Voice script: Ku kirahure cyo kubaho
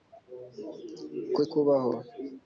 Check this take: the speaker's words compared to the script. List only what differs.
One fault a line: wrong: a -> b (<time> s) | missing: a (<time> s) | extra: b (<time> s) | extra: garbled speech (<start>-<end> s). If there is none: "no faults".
missing: kirahure cyo (1.4 s)